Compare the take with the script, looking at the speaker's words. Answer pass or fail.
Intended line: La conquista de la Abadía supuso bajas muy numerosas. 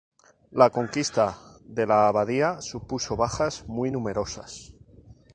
pass